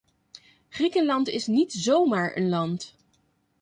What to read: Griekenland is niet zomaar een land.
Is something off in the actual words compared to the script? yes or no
no